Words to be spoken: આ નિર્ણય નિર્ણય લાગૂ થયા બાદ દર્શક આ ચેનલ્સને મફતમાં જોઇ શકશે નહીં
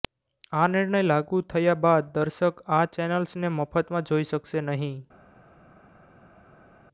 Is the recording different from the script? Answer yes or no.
yes